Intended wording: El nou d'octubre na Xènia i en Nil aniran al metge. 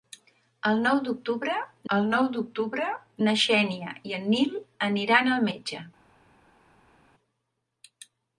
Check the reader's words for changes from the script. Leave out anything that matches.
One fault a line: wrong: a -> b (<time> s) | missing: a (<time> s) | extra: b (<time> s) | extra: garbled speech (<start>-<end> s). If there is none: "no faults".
extra: el nou d'octubre (2.0 s)